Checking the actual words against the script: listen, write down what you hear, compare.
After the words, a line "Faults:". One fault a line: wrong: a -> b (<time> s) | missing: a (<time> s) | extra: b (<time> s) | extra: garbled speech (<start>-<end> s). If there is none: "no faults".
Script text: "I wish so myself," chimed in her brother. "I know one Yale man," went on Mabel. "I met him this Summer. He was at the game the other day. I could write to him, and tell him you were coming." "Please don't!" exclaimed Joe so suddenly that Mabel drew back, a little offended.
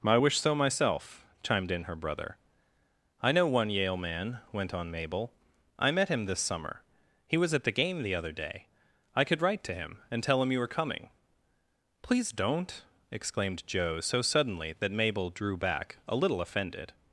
"I wish so myself," chimed in her brother. "I know one Yale man," went on Mabel. "I met him this Summer. He was at the game the other day. I could write to him, and tell him you were coming." "Please don't!" exclaimed Joe so suddenly that Mabel drew back, a little offended.
Faults:
no faults